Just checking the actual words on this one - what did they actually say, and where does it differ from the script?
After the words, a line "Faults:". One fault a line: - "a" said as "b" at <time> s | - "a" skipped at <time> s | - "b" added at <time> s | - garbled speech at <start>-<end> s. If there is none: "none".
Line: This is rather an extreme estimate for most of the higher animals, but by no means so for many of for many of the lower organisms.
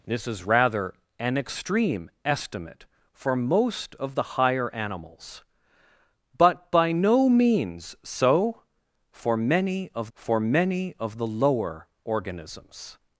This is rather an extreme estimate for most of the higher animals, but by no means so for many of for many of the lower organisms.
Faults:
none